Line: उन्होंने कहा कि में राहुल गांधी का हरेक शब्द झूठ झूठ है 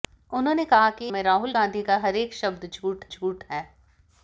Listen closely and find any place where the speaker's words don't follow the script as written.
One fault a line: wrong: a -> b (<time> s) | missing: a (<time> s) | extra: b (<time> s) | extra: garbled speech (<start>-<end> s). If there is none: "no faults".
no faults